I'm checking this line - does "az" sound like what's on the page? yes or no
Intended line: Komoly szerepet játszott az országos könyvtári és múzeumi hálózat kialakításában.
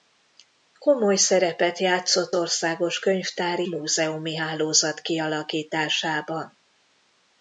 no